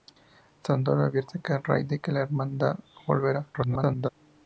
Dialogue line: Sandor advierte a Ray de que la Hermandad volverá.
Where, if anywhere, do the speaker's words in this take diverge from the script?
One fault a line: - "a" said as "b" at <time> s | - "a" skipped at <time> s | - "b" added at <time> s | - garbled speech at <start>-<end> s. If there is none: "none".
- garbled speech at 3.5-4.1 s